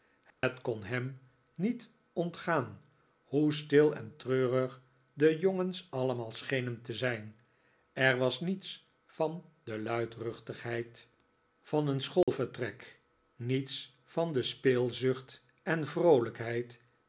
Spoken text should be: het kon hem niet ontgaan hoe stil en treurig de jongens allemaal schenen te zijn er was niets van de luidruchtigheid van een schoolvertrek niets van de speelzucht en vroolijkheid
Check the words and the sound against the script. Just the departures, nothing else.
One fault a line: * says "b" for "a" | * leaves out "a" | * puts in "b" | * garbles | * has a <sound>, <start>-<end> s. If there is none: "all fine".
* has a dropout, 0.3-0.4 s
* has a dropout, 12.2-12.3 s